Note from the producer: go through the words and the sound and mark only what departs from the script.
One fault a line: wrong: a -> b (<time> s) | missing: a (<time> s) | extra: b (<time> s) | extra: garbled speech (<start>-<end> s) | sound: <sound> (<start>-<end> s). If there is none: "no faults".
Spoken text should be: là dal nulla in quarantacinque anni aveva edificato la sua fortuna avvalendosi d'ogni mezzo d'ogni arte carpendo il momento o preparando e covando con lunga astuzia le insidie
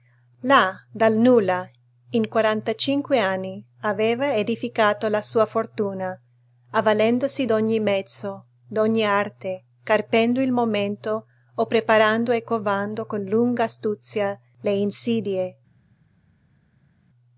no faults